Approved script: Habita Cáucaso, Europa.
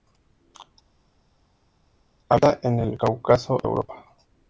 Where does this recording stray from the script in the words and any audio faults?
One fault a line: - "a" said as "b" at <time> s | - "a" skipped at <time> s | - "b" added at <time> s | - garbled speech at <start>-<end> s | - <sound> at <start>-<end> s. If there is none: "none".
- "en el" added at 2.6 s